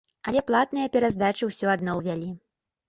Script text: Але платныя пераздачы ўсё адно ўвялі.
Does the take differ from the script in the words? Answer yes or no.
no